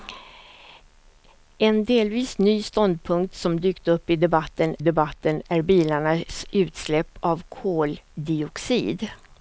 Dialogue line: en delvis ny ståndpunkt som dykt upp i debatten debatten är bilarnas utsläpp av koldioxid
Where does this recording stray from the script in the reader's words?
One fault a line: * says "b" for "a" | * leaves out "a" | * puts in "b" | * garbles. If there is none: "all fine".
all fine